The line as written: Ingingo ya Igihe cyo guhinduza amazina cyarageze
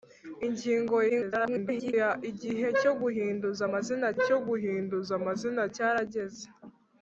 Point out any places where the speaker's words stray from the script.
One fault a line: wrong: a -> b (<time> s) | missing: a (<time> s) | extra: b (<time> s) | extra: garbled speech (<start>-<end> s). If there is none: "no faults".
extra: garbled speech (1.1-1.9 s)
extra: cyo guhinduza amazina (4.3 s)